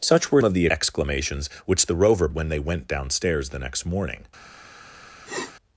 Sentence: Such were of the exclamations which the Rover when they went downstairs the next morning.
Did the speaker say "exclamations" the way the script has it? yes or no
yes